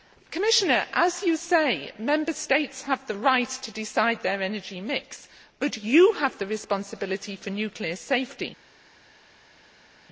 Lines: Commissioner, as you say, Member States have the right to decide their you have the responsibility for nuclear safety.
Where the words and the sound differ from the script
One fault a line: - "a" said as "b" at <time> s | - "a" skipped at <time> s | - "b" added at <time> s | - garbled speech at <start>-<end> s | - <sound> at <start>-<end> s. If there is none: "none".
- "energy mix but" added at 4.4 s